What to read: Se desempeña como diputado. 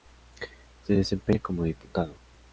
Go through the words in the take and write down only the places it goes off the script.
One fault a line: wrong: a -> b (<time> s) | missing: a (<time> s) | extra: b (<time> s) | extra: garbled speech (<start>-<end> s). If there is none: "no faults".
no faults